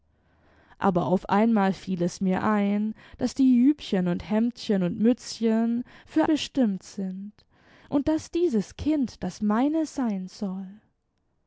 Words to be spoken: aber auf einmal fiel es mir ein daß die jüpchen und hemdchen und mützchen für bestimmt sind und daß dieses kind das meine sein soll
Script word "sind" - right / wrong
right